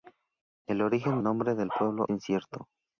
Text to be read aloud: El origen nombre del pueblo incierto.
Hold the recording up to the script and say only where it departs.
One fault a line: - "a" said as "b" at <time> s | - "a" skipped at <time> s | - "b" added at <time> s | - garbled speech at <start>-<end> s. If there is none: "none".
none